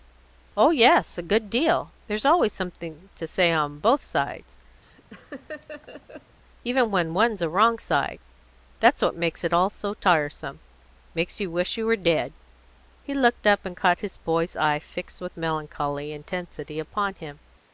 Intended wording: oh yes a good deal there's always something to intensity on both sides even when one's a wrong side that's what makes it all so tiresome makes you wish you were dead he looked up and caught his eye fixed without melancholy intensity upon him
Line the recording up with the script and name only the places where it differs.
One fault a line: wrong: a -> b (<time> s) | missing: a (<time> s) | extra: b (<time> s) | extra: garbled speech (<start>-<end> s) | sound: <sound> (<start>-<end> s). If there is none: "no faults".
wrong: intensity -> say (3.3 s)
sound: laugh (4.8-6.4 s)
extra: boy's (14.2 s)
wrong: without -> with (15.2 s)